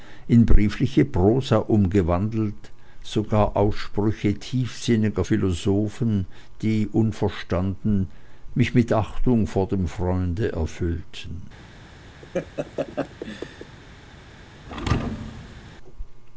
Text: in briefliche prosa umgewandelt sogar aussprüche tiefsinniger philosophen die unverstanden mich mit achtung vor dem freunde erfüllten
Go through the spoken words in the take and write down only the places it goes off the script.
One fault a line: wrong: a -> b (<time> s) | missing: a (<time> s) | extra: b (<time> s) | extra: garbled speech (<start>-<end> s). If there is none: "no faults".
no faults